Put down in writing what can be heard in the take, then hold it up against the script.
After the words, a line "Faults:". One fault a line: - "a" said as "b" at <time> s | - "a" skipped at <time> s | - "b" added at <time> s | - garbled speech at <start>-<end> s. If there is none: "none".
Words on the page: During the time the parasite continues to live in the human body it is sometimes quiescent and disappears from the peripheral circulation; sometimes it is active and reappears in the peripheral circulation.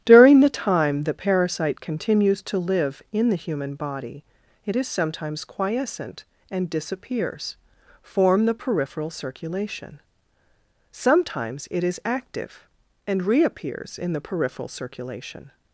During the time the parasite continues to live in the human body it is sometimes quiescent and disappears form the peripheral circulation; sometimes it is active and reappears in the peripheral circulation.
Faults:
- "from" said as "form" at 8.0 s